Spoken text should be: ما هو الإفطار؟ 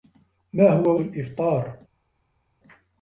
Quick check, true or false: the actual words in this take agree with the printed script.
true